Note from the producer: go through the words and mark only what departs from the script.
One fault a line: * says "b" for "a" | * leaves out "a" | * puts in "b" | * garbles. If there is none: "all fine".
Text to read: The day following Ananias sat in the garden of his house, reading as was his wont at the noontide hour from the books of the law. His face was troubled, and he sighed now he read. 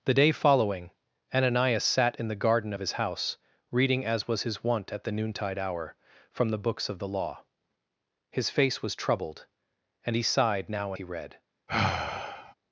all fine